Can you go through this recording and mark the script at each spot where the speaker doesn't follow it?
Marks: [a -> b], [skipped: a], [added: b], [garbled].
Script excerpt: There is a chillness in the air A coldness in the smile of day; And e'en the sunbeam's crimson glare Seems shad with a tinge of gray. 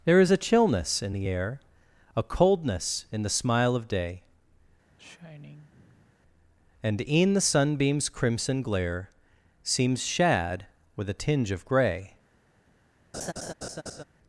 There is a chillness in the air A coldness in the smile of day; And e'en the sunbeam's crimson glare Seems shad with a tinge of gray.